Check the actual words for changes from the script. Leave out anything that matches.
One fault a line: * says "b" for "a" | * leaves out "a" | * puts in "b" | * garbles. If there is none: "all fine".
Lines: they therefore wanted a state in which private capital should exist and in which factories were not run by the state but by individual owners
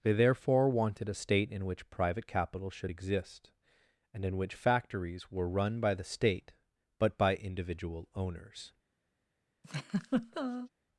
* leaves out "not"